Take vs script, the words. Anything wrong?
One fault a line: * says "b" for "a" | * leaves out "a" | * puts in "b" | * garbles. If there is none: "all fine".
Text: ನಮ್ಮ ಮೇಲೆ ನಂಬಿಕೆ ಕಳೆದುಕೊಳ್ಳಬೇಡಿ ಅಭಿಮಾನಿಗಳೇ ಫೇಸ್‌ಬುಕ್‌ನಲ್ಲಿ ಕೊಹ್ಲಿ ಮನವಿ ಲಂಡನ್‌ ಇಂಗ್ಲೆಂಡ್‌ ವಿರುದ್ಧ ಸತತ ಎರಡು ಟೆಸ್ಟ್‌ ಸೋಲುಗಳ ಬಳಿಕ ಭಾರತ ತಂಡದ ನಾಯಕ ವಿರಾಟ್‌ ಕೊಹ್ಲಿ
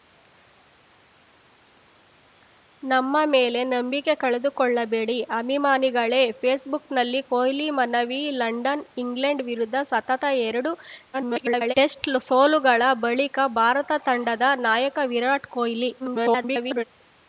* garbles
* garbles